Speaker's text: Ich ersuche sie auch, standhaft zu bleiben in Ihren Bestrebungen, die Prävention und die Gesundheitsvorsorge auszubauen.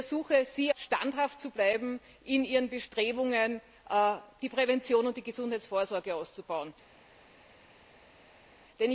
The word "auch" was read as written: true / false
false